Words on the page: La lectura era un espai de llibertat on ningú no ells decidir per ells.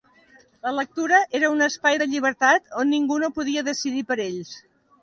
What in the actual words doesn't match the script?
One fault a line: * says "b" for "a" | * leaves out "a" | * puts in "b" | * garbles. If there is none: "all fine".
* says "podia" for "ells"